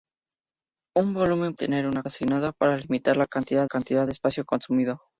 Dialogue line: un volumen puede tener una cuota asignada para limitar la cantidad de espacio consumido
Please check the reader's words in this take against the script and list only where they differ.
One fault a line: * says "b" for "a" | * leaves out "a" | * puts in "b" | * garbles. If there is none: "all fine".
* leaves out "puede"
* leaves out "cuota"
* puts in "cantidad"